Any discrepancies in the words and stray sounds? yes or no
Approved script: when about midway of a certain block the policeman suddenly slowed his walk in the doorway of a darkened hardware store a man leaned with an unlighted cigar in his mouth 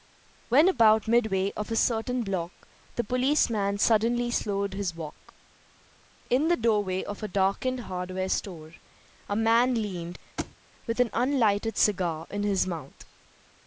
yes